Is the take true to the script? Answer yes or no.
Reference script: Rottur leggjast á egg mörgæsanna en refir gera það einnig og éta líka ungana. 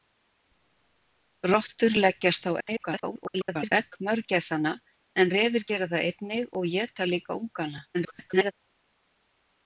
no